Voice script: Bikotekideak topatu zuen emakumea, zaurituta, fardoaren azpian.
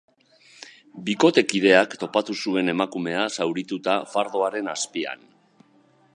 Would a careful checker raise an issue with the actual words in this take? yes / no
no